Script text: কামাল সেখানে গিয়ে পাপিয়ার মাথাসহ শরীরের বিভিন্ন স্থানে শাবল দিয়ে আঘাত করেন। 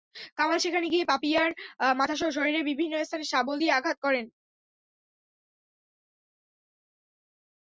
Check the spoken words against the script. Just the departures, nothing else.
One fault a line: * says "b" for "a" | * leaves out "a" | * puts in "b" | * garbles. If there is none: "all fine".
all fine